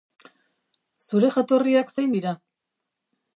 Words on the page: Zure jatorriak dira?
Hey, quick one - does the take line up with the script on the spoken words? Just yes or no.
no